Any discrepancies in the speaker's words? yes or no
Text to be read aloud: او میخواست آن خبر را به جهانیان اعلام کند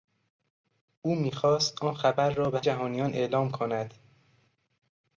no